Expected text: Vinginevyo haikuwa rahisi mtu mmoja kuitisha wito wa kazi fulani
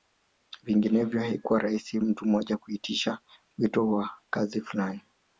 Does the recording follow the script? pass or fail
pass